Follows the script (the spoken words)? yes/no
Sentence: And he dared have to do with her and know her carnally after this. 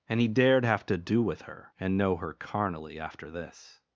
yes